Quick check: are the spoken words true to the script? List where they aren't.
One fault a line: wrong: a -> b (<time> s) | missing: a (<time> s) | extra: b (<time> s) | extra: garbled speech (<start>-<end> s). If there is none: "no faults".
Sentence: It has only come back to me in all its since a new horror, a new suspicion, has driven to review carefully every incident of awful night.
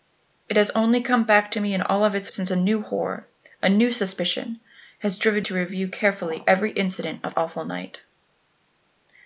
no faults